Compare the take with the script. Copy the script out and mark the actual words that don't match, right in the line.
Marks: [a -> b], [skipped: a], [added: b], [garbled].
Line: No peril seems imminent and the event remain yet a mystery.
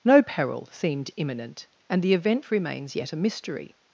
No peril [seems -> seemed] imminent and the event [remain -> remains] yet a mystery.